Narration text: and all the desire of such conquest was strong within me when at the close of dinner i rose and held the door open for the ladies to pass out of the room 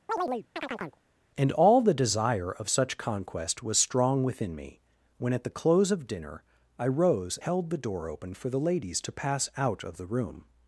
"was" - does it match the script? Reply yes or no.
yes